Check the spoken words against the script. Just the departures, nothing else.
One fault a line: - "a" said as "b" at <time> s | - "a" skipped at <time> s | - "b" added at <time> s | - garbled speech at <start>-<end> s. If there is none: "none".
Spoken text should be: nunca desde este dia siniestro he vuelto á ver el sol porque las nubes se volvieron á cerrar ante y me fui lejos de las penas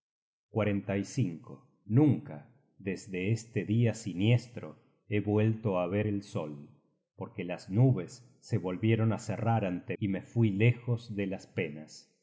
none